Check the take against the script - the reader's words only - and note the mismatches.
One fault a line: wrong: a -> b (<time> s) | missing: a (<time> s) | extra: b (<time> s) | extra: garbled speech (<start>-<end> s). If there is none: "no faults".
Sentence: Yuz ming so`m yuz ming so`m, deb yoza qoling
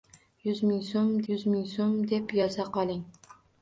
no faults